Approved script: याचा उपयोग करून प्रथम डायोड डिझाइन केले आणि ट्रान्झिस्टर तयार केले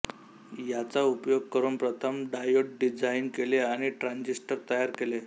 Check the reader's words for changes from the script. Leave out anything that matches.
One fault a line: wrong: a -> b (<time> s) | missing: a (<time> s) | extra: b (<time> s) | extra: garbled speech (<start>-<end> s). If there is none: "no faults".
no faults